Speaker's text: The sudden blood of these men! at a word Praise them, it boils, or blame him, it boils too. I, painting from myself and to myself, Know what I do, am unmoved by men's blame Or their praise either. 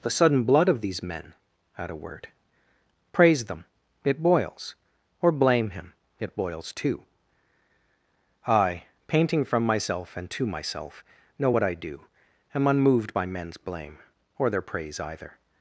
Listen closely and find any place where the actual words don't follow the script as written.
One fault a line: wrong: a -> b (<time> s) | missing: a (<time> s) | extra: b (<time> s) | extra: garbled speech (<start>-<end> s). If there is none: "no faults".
no faults